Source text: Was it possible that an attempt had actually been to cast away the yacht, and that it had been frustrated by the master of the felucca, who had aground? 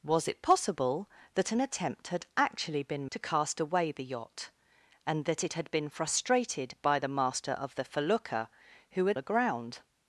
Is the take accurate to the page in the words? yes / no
yes